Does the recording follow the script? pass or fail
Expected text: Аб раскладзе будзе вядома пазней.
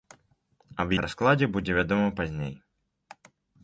pass